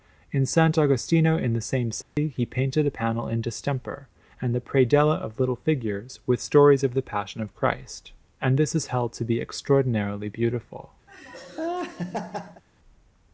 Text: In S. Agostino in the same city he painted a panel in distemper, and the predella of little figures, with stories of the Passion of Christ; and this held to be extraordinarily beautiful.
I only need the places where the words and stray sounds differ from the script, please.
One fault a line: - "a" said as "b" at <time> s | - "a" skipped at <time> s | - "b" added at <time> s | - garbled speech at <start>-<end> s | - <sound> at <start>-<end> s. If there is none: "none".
- dropout at 2.0-2.2 s
- "is" added at 8.7 s
- laugh at 11.1-12.6 s